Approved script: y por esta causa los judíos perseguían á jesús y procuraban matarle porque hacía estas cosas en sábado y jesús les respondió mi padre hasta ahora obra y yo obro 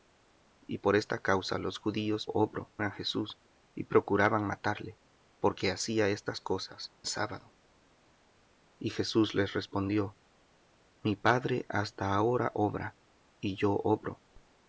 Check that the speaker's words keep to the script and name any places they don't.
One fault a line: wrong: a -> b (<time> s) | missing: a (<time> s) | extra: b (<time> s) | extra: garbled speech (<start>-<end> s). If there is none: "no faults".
wrong: perseguían -> obro (2.2 s)
missing: en (6.9 s)